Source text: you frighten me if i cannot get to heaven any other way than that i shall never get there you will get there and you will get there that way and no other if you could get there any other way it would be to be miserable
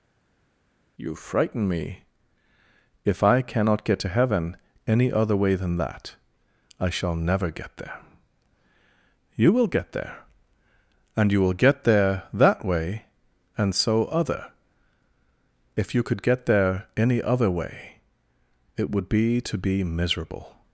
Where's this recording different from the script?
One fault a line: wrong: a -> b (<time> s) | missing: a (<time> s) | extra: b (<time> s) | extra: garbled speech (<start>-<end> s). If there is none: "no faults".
wrong: no -> so (13.7 s)